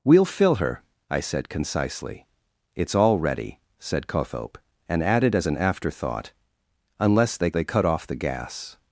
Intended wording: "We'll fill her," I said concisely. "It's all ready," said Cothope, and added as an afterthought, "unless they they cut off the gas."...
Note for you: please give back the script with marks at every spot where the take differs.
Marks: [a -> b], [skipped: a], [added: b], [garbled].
"We'll fill her," I said concisely. "It's all ready," said Cothope, and added as an afterthought, "unless they they cut off the gas."...